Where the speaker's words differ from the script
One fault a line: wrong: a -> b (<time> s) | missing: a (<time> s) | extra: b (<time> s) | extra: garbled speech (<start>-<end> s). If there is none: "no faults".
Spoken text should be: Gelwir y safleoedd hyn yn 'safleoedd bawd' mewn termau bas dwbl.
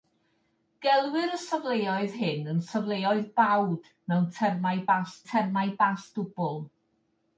extra: termau bas (5.3 s)